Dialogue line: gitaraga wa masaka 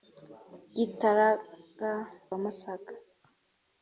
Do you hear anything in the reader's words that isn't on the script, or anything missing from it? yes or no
no